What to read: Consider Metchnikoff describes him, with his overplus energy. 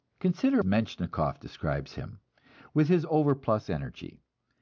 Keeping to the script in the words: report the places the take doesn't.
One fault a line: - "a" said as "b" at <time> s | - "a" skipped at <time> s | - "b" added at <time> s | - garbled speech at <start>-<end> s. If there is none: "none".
none